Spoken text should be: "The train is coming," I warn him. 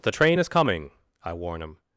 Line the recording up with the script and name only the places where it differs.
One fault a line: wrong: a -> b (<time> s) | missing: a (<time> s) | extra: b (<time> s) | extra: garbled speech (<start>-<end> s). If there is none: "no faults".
no faults